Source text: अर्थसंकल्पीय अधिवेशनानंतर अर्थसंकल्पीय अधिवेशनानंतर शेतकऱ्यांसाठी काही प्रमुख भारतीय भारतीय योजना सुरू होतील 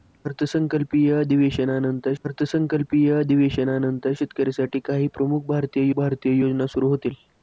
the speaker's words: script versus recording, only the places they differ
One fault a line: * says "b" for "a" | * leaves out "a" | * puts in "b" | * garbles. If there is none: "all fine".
all fine